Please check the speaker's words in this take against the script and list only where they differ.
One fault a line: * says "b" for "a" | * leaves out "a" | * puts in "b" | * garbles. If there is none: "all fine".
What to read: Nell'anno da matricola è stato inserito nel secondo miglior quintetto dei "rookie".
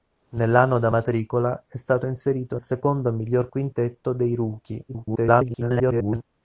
* leaves out "nel"
* garbles